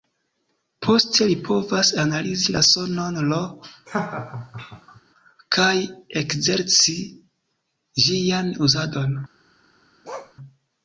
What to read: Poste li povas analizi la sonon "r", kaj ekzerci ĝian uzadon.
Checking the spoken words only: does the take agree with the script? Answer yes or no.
yes